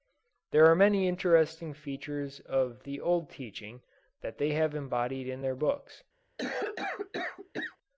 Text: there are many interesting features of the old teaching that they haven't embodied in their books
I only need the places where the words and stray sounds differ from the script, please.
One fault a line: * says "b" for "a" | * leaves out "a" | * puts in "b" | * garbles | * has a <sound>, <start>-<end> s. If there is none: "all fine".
* says "have" for "haven't"
* has a cough, 6.4-7.8 s